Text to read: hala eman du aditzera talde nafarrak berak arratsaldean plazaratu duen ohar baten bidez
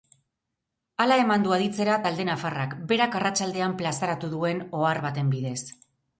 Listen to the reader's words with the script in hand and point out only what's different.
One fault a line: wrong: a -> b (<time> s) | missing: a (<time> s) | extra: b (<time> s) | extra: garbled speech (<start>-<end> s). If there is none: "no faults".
no faults